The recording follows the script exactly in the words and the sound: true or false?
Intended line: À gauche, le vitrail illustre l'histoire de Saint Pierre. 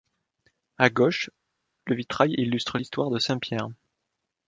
true